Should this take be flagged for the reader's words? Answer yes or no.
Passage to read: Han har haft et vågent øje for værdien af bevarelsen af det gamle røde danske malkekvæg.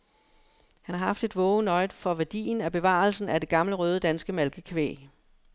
no